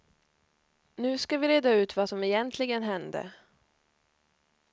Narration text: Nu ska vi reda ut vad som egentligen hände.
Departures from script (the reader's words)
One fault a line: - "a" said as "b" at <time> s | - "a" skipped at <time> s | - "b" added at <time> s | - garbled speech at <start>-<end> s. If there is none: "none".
none